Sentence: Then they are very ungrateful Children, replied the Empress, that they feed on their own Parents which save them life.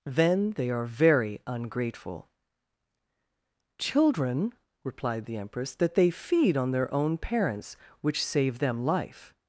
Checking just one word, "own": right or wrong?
right